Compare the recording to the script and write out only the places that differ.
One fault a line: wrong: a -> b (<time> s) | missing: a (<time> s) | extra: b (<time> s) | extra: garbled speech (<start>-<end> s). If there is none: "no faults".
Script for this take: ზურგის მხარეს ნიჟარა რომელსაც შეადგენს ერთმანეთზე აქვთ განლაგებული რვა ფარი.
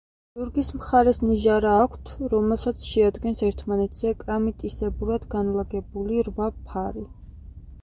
extra: აქვთ (1.8 s)
wrong: აქვთ -> კრამიტისებურად (4.2 s)